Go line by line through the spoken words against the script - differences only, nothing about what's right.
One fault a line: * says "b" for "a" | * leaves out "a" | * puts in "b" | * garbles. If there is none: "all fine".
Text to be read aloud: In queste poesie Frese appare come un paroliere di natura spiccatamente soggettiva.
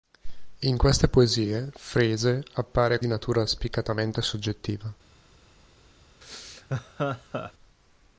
* leaves out "come un paroliere"